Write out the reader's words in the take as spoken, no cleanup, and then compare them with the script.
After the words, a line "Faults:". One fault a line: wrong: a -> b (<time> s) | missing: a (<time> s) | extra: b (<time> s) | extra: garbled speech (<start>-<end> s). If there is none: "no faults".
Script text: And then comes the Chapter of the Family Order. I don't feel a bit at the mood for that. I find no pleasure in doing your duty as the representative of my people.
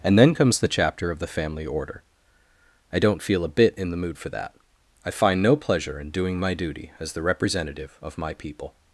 And then comes the Chapter of the Family Order. I don't feel a bit in the mood for that. I find no pleasure in doing my duty as the representative of my people.
Faults:
wrong: at -> in (3.8 s)
wrong: your -> my (6.4 s)